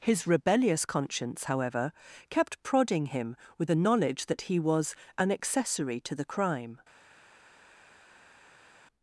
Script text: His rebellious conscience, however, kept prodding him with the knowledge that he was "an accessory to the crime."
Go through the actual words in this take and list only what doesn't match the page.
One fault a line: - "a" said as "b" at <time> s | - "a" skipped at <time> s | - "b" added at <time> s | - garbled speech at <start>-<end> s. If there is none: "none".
none